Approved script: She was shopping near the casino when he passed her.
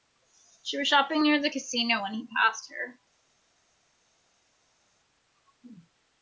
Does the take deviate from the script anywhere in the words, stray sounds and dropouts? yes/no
no